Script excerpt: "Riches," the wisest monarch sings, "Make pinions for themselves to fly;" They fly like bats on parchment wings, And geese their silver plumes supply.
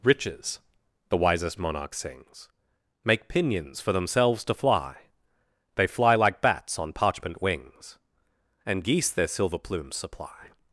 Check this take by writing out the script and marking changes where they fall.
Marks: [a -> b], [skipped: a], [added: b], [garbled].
"Riches," the wisest monarch sings, "Make pinions for themselves to fly;" They fly like bats on parchment wings, And geese their silver plumes supply.